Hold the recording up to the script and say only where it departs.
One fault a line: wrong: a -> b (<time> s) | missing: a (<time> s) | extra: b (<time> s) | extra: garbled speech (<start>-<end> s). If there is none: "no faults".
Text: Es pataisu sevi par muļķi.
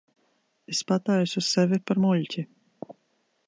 no faults